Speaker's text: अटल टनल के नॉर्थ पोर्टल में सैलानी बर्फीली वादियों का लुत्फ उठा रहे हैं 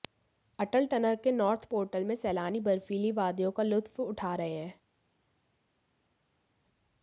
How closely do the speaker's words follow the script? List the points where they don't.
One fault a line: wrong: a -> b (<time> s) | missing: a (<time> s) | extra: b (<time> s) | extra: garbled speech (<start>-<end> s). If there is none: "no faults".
no faults